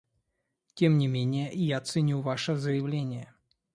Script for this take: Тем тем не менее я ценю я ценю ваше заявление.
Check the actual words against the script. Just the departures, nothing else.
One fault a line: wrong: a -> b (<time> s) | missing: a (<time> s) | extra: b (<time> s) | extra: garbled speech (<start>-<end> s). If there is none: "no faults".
missing: тем (1.0 s)
missing: я ценю (2.2 s)